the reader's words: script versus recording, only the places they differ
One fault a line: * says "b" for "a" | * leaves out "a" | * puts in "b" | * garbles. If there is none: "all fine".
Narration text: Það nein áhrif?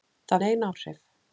all fine